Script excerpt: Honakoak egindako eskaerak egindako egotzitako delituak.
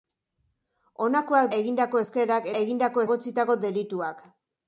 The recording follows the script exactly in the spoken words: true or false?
true